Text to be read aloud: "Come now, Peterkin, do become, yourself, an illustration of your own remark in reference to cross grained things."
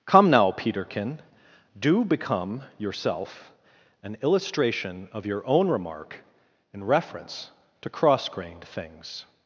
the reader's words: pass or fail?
pass